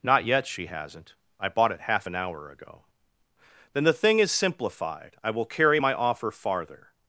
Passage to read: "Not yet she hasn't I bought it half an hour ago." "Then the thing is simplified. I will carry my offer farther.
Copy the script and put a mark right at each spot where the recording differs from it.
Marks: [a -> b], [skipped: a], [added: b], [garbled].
"Not yet she hasn't I bought it half an hour ago." "Then the thing is simplified. I will carry my offer farther.